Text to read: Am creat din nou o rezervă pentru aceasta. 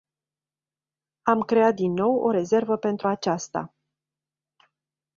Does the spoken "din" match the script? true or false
true